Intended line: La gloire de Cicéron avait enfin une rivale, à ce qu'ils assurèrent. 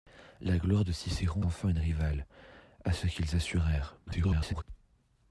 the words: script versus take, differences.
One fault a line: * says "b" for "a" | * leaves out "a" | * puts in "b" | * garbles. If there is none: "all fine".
* leaves out "avait"
* garbles